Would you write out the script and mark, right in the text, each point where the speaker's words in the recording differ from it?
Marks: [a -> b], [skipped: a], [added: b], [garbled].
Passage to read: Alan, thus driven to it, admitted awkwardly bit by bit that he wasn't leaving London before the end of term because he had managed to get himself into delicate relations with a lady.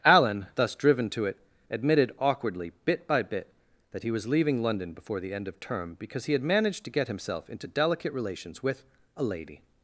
Alan, thus driven to it, admitted awkwardly bit by bit that he [wasn't -> was] leaving London before the end of term because he had managed to get himself into delicate relations with a lady.